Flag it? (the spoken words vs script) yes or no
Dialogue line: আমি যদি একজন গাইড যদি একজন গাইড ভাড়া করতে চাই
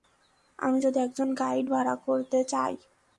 yes